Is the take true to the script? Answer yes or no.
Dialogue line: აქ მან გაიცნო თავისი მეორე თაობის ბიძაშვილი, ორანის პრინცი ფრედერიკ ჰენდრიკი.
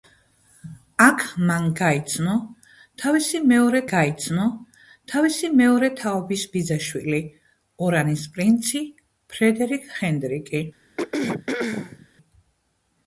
no